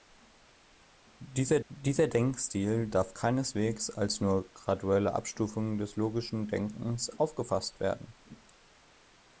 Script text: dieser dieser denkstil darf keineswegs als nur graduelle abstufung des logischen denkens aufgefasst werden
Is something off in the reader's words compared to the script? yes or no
no